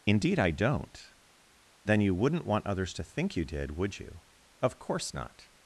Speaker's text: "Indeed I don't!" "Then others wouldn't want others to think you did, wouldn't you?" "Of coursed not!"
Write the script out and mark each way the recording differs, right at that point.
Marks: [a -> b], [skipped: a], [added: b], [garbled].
"Indeed I don't!" "Then [others -> you] wouldn't want others to think you did, [wouldn't -> would] you?" "Of [coursed -> course] not!"